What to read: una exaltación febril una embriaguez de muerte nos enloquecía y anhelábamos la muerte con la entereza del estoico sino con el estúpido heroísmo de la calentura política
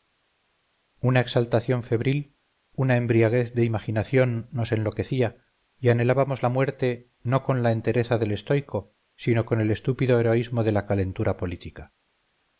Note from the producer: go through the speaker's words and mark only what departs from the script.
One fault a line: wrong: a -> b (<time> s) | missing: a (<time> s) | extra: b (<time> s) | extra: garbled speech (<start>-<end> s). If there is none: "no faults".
wrong: muerte -> imaginación (3.6 s)
extra: no (7.2 s)